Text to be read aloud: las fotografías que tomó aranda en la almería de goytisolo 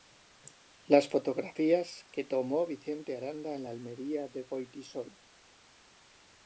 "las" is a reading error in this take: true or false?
false